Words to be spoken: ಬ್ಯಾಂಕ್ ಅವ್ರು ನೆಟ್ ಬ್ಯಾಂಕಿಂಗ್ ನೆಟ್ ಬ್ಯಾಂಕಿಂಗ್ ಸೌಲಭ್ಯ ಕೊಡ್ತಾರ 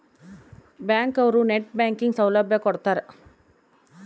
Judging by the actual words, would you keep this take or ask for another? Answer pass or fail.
fail